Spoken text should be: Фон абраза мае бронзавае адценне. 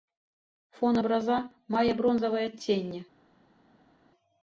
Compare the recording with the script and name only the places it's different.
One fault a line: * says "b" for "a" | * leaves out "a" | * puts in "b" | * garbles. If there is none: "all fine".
all fine